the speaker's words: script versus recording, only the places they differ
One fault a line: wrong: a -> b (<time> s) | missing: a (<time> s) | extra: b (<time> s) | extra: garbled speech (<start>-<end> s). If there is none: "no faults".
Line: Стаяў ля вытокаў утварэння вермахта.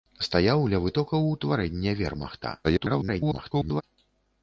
extra: garbled speech (2.6-3.8 s)